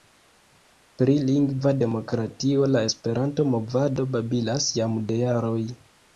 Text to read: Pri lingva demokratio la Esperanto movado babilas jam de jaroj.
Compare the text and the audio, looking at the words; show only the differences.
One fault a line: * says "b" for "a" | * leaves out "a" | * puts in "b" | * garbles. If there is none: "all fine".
all fine